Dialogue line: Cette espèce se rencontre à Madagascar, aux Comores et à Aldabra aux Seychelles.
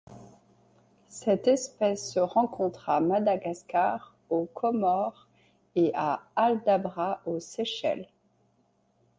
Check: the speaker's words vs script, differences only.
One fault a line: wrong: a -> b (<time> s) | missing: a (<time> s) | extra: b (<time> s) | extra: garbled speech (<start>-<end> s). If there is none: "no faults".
no faults